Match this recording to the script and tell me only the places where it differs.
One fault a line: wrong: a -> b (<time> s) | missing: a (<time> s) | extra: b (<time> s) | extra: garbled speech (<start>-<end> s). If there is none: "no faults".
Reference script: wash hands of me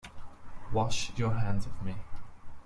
extra: your (1.1 s)